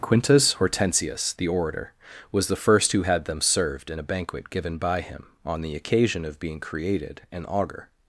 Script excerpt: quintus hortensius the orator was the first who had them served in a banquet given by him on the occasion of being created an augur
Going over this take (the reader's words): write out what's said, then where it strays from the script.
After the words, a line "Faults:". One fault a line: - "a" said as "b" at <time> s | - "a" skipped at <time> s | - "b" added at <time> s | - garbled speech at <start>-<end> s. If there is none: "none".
quintus hortensius the orator was the first who had them served in a banquet given by him on the occasion of being created an augur
Faults:
none